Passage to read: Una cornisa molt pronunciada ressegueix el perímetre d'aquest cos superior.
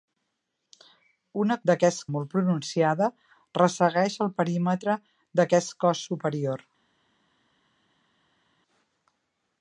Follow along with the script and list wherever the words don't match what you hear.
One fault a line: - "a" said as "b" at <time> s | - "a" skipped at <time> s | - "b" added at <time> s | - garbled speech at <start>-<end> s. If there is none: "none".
- "cornisa" said as "d'aquest" at 1.7 s